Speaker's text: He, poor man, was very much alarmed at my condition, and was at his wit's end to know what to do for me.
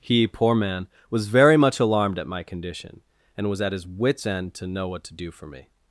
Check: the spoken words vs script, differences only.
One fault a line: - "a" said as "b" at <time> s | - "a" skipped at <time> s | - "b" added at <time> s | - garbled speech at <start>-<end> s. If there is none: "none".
none